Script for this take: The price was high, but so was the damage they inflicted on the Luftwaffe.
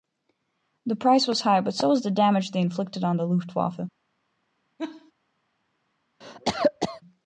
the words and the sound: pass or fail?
fail